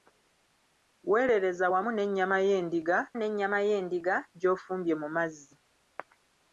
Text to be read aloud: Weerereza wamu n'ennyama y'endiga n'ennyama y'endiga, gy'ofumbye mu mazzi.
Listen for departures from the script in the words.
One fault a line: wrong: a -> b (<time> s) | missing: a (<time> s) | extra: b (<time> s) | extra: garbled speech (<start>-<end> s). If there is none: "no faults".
no faults